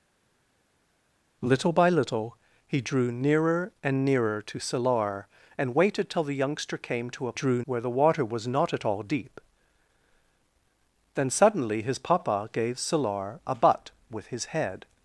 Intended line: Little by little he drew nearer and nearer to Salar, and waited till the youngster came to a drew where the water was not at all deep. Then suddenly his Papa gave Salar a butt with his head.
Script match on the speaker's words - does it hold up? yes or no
yes